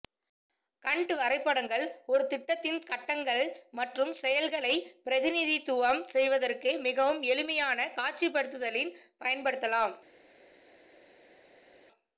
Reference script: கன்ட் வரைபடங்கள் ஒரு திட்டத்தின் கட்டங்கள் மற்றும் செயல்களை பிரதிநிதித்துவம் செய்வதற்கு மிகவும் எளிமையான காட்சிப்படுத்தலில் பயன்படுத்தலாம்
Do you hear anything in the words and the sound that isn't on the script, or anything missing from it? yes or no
no